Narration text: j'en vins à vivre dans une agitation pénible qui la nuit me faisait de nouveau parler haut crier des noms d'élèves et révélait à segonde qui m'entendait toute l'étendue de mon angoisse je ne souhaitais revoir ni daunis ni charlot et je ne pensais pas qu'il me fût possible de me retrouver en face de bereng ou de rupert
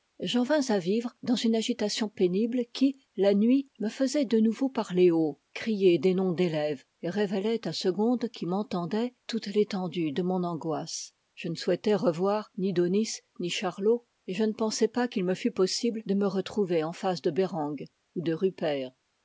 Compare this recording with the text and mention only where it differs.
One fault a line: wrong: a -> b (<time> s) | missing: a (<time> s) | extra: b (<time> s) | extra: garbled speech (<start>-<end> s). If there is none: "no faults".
no faults